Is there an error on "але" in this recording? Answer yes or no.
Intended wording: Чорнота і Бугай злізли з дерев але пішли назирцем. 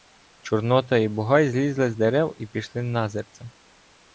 yes